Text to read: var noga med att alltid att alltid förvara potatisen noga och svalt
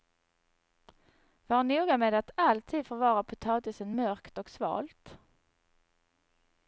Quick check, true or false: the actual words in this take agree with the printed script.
false